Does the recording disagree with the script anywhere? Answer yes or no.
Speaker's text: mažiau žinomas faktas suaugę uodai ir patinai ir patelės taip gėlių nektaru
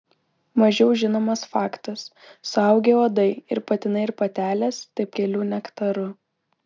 no